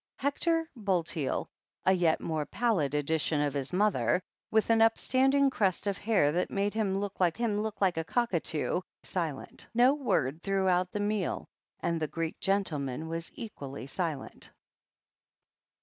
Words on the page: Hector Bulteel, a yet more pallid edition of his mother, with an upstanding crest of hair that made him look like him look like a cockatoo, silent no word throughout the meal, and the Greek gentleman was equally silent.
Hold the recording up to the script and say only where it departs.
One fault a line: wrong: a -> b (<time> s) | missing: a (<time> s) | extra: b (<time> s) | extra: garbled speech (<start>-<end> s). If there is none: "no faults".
no faults